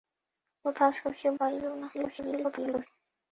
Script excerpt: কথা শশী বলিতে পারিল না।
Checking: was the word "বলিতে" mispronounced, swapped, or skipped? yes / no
yes